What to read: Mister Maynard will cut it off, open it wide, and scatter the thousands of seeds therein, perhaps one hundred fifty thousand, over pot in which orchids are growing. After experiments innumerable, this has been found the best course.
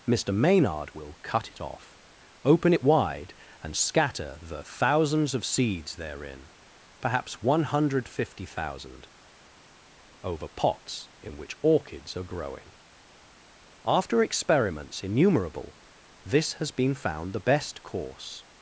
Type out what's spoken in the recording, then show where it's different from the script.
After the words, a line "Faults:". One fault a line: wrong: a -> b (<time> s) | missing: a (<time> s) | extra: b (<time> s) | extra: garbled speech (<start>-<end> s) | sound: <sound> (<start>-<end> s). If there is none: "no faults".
Mister Maynard will cut it off, open it wide, and scatter the thousands of seeds therein, perhaps one hundred fifty thousand, over pots in which orchids are growing. After experiments innumerable, this has been found the best course.
Faults:
wrong: pot -> pots (10.5 s)